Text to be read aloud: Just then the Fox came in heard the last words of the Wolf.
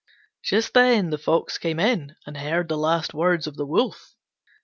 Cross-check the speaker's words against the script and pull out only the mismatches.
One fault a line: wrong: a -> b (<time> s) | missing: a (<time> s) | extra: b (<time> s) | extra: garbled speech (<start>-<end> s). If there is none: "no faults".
extra: and (2.2 s)